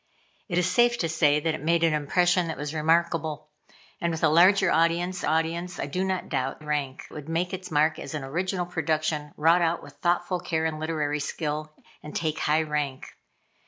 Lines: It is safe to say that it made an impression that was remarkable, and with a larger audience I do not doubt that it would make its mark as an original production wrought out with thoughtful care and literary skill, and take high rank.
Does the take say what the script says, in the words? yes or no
no